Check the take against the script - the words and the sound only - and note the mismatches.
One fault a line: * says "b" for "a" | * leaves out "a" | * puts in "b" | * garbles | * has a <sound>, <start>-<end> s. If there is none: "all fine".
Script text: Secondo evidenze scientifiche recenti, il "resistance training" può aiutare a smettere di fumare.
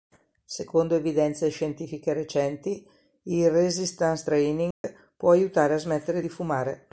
* has a dropout, 4.7-4.8 s